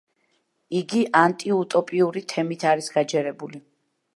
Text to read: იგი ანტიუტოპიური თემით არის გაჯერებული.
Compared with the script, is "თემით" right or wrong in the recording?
right